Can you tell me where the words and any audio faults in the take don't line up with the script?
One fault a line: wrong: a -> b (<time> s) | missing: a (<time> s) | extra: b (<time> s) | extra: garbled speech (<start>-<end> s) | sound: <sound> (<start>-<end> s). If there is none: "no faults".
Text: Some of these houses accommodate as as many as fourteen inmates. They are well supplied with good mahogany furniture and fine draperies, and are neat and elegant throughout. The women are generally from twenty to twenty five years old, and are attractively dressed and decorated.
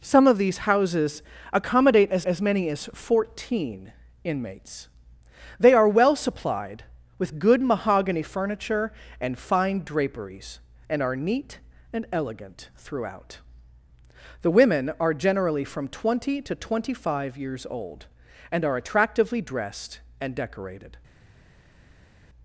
no faults